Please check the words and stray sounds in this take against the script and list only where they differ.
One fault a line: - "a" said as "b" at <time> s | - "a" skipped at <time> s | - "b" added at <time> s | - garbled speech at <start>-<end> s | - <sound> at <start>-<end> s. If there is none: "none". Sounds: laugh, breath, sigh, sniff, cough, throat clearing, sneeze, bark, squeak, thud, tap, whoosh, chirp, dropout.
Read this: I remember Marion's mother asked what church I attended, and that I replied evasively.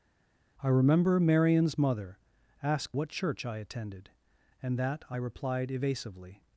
none